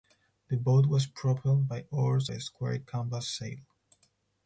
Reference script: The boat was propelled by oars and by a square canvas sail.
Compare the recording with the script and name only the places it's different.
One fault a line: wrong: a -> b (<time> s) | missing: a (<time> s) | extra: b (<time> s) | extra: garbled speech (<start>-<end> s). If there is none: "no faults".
missing: and (2.3 s)